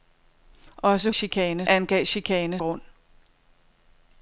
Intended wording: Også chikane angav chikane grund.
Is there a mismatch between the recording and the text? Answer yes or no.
no